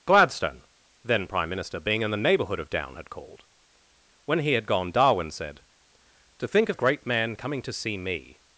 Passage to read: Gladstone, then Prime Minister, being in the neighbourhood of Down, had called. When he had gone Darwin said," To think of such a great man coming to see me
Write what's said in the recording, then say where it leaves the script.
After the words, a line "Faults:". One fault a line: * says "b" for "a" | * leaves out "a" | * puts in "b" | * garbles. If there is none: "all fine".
Gladstone, then Prime Minister, being in the neighbourhood of Down, had called. When he had gone Darwin said," To think of a great man coming to see me
Faults:
* leaves out "such"